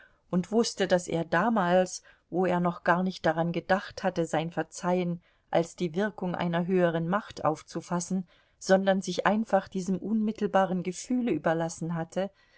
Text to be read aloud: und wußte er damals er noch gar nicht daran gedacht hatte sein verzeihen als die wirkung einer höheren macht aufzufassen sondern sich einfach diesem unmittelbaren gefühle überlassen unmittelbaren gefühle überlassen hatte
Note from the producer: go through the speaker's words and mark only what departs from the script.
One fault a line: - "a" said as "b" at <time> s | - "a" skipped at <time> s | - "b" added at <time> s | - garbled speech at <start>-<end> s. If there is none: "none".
- "daß" added at 0.9 s
- "wo" added at 2.3 s
- "unmittelbaren gefühle überlassen" skipped at 11.9 s